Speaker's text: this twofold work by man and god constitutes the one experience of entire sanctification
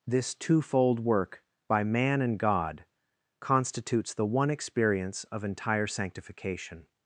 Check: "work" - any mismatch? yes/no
no